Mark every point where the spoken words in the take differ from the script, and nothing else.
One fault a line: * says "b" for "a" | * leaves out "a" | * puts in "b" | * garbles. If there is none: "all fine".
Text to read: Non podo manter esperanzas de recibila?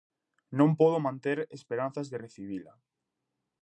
all fine